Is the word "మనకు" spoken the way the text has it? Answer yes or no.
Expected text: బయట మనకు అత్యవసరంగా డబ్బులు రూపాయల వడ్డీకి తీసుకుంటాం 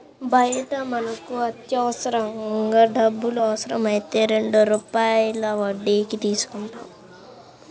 yes